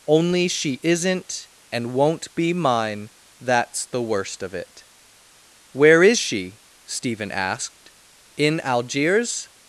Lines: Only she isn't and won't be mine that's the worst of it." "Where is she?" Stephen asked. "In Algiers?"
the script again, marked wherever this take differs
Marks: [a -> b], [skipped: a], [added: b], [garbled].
Only she isn't and won't be mine that's the worst of it." "Where is she?" Stephen asked. "In Algiers?"